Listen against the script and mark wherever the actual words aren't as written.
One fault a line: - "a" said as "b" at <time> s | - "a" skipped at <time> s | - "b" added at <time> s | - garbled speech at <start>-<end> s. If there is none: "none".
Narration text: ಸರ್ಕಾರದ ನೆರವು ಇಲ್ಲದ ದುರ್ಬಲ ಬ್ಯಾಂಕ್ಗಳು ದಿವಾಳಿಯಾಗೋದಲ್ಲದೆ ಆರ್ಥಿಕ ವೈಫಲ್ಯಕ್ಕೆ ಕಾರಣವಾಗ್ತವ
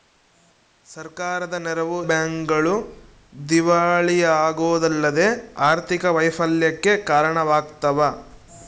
- "ಇಲ್ಲದ ದುರ್ಬಲ" skipped at 2.0 s